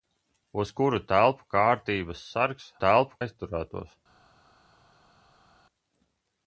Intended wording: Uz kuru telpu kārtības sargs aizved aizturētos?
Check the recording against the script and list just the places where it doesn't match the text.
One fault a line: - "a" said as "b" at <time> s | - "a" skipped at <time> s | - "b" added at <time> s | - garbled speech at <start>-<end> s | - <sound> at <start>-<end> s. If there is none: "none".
- "aizved" said as "telpu" at 2.8 s